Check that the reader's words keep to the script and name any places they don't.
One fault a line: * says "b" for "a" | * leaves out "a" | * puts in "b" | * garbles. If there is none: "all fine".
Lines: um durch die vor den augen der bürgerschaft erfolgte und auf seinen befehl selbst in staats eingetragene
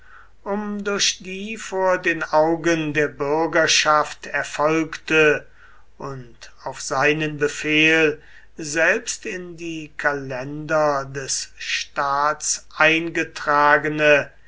* puts in "die kalender des"